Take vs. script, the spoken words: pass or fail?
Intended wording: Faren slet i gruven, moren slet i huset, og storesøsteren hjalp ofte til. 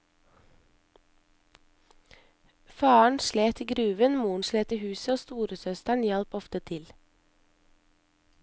pass